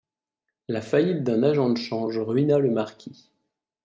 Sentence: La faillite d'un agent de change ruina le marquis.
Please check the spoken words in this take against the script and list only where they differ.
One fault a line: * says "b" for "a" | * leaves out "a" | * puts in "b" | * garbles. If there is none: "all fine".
all fine